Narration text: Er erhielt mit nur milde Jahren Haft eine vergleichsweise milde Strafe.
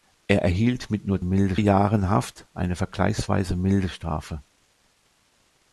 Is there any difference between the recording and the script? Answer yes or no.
no